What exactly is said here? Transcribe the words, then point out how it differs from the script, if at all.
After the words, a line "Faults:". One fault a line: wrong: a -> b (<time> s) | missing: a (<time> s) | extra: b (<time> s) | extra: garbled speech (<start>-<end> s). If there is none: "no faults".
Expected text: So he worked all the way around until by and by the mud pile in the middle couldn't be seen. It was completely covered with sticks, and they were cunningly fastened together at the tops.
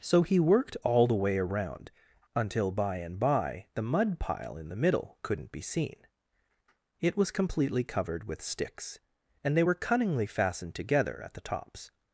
So he worked all the way around until by and by the mud pile in the middle couldn't be seen. It was completely covered with sticks, and they were cunningly fastened together at the tops.
Faults:
no faults